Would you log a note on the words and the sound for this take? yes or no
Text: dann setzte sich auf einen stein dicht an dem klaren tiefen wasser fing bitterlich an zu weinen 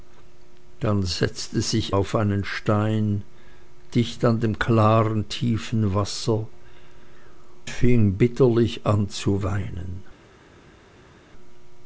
no